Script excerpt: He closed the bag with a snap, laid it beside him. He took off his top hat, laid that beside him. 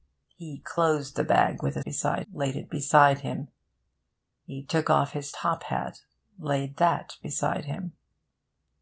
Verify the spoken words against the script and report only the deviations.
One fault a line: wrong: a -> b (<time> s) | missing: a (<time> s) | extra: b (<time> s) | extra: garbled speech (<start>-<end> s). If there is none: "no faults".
wrong: snap -> beside (1.8 s)